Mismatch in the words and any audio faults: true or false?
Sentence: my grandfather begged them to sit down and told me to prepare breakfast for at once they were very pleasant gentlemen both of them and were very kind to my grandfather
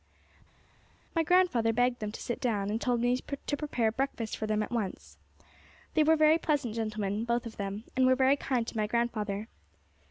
true